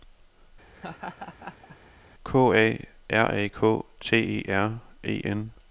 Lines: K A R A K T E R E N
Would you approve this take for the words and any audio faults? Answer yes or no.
no